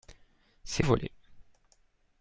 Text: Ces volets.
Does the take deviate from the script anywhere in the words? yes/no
no